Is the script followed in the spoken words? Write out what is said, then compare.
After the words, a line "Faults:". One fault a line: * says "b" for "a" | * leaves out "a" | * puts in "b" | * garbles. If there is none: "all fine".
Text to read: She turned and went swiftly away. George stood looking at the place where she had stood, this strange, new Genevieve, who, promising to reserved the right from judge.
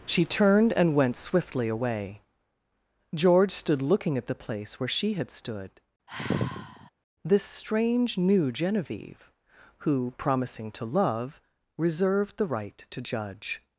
She turned and went swiftly away. George stood looking at the place where she had stood, this strange, new Genevieve, who, promising to love, reserved the right to judge.
Faults:
* puts in "love"
* says "to" for "from"